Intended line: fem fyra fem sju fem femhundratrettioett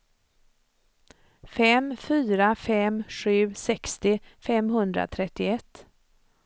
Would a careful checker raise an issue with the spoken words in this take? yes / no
yes